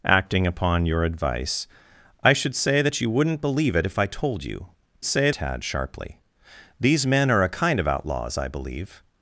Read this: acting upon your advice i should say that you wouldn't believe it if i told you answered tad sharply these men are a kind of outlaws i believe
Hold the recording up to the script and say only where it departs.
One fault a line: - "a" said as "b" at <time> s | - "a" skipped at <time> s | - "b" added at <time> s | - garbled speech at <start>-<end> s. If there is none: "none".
- "answered" said as "say" at 5.0 s